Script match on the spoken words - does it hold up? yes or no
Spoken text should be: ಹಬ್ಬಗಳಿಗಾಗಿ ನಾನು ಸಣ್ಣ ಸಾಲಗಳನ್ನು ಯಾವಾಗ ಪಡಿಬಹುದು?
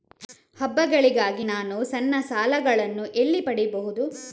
no